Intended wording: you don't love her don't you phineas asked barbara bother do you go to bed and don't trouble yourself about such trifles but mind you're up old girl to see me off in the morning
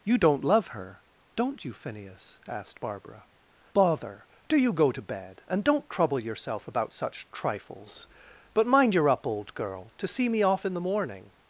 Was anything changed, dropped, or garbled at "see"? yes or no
no